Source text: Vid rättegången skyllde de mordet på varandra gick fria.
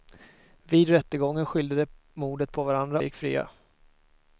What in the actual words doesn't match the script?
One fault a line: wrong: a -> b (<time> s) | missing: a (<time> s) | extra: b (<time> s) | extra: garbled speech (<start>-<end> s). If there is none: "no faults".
no faults